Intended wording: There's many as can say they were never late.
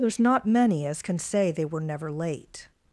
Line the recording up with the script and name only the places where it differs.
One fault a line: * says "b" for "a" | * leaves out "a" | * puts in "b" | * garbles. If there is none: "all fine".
* puts in "not"